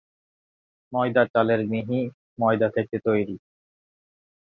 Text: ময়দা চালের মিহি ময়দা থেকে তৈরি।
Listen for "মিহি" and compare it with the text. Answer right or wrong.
right